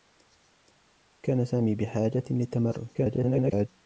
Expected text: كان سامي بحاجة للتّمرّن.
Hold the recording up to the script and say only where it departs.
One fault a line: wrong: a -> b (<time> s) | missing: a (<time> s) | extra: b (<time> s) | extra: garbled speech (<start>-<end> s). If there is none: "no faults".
extra: garbled speech (2.9-3.7 s)